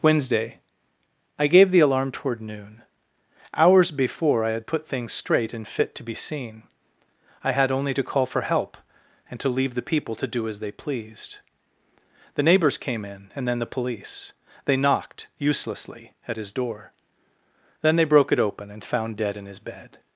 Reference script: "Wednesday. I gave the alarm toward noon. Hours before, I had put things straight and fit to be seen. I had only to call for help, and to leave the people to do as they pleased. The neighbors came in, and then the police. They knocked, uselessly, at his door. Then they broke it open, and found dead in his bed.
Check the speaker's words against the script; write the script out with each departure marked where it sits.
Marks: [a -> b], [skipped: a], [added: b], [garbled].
"Wednesday. I gave the alarm toward noon. Hours before, I had put things straight and fit to be seen. I had only to call for help, and to leave the people to do as they pleased. The neighbors came in, and then the police. They knocked, uselessly, at his door. Then they broke it open, and found dead in his bed.